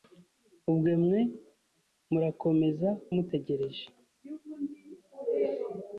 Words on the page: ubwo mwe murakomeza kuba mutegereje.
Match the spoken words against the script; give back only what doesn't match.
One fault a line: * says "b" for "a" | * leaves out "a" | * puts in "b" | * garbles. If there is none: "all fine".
* leaves out "kuba"